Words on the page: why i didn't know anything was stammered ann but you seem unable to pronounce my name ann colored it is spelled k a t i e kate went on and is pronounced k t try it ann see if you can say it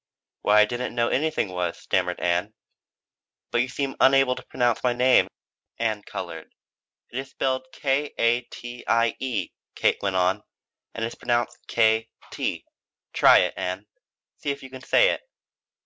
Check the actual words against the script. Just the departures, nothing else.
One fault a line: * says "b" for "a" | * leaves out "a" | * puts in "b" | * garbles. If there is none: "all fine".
all fine